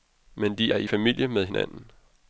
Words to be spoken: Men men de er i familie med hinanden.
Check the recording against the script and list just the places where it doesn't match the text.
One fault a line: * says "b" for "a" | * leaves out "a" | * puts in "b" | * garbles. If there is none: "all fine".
* leaves out "men"